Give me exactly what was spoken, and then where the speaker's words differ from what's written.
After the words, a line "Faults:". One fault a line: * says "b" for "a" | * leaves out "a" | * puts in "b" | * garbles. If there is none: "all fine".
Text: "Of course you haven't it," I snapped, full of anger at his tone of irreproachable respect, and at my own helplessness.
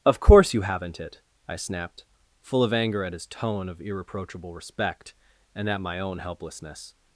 "Of course you haven't it," I snapped, full of anger at his tone of irreproachable respect, and at my own helplessness.
Faults:
all fine